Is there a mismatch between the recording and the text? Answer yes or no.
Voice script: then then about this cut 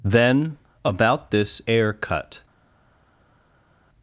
yes